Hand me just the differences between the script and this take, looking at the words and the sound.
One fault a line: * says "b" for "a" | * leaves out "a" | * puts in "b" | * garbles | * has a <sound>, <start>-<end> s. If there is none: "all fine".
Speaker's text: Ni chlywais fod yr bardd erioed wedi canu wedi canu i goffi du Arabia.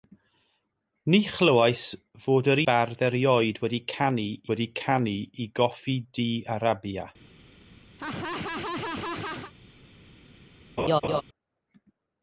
* has a laugh, 8.0-9.5 s
* has a laugh, 10.8-11.2 s